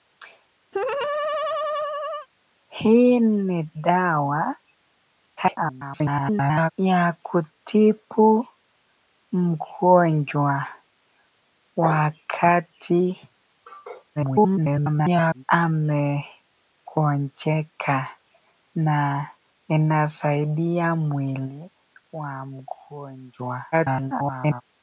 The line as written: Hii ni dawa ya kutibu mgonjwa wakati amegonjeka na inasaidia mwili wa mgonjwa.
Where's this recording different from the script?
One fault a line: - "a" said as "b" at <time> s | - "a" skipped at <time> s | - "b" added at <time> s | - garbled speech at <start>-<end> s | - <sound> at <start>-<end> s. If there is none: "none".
- laugh at 0.7-2.3 s
- garbled speech at 5.4-6.7 s
- garbled speech at 14.2-15.4 s
- garbled speech at 23.7-24.6 s